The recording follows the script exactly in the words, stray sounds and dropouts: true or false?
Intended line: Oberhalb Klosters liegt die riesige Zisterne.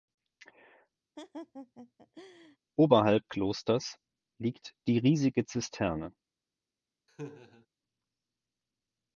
false